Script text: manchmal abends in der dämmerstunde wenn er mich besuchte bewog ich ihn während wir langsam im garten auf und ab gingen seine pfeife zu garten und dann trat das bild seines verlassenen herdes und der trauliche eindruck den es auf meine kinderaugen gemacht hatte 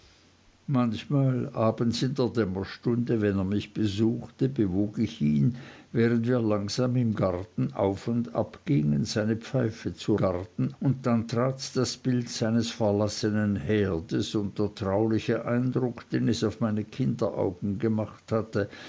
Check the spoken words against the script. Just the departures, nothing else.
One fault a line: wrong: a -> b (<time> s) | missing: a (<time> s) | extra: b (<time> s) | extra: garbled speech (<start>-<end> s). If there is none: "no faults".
no faults